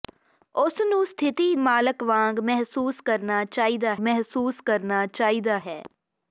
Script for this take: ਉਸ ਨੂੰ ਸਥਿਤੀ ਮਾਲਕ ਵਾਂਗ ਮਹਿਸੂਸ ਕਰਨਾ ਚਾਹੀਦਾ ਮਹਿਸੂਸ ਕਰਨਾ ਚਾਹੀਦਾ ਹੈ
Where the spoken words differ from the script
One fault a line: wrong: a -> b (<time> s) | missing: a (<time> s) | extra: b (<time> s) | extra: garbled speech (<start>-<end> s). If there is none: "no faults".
no faults